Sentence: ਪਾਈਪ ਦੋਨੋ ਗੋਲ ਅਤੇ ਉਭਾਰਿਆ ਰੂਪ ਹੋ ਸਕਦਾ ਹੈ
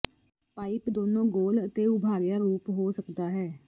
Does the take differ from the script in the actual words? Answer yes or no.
no